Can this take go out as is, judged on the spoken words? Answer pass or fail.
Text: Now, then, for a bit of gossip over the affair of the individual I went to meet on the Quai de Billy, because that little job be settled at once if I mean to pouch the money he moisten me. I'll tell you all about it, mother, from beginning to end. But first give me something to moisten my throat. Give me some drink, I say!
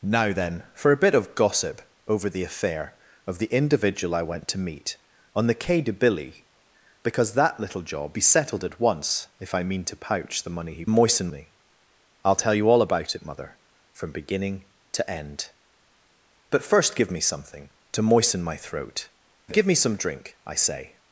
pass